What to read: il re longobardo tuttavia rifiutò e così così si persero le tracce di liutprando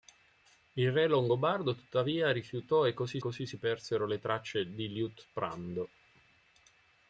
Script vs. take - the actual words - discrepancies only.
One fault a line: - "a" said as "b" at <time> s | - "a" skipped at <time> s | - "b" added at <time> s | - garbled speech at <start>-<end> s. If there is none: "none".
none